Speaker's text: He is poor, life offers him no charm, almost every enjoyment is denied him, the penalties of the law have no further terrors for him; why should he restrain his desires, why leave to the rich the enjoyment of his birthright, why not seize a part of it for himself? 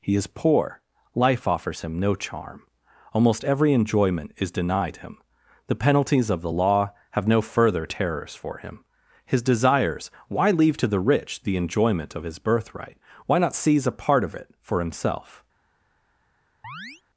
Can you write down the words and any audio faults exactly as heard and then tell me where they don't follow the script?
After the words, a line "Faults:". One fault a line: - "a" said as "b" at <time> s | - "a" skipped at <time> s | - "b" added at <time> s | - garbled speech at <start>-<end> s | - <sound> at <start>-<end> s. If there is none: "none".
He is poor, life offers him no charm, almost every enjoyment is denied him, the penalties of the law have no further terrors for him; his desires, why leave to the rich the enjoyment of his birthright, why not seize a part of it for himself?
Faults:
- "why should he restrain" skipped at 8.8 s
- chirp at 16.6-17.0 s